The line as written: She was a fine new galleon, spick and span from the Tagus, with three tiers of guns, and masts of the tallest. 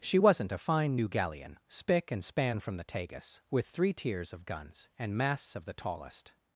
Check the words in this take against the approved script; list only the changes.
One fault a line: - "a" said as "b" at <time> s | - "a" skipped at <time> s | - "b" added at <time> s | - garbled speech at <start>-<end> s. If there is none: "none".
- "was" said as "wasn't" at 0.2 s